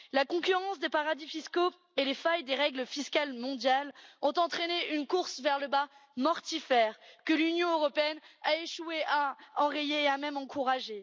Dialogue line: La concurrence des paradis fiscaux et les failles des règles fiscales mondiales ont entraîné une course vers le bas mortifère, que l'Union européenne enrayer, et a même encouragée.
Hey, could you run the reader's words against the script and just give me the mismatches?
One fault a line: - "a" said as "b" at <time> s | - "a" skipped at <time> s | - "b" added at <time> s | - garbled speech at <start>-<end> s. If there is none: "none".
- "a échoué à" added at 8.4 s